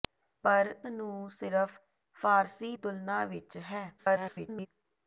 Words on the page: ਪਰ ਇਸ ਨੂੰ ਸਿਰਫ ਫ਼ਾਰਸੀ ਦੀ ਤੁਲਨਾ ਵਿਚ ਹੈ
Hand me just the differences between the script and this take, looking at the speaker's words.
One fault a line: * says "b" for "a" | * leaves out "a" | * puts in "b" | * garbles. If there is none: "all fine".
* leaves out "ਇਸ"
* leaves out "ਦੀ"
* garbles